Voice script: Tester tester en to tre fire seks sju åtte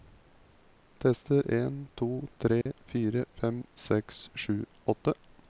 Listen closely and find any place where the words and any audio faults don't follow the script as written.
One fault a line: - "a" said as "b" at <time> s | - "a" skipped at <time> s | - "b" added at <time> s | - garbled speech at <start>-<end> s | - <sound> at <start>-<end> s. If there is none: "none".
- "tester" skipped at 1.5 s
- dropout at 2.6-2.7 s
- "fem" added at 3.4 s